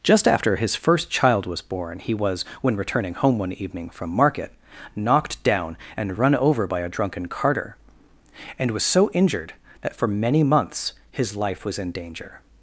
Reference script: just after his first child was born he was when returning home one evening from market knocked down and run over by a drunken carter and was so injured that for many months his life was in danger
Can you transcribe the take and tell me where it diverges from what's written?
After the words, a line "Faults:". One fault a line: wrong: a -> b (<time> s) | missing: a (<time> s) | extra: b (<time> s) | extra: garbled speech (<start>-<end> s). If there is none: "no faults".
just after his first child was born he was when returning home one evening from market knocked down and run over by a drunken carter and was so injured that for many months his life was in danger
Faults:
no faults